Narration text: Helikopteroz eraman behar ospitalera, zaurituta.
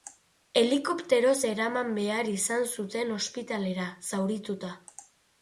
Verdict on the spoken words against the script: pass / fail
fail